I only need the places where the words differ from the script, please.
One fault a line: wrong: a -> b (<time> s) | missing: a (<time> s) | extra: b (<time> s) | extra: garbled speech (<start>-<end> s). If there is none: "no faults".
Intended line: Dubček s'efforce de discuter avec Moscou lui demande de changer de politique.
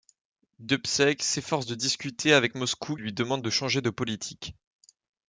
no faults